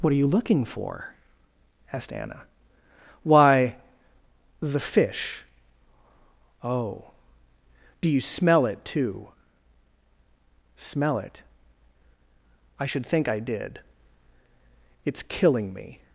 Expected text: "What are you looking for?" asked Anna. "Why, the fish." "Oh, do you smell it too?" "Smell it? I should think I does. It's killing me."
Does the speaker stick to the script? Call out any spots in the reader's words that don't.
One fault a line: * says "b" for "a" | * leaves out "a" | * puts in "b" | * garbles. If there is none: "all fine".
* says "did" for "does"